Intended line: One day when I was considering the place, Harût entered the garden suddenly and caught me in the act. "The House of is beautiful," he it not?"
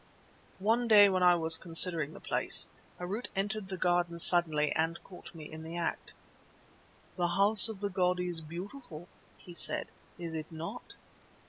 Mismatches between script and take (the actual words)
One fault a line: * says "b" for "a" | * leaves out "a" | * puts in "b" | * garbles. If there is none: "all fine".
* puts in "the god"
* puts in "said is"